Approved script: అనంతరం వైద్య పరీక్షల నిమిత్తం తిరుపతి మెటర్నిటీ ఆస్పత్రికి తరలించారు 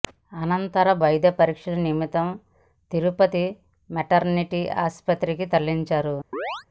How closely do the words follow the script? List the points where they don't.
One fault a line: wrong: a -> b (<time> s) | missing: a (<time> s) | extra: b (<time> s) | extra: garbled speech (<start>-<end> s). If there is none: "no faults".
no faults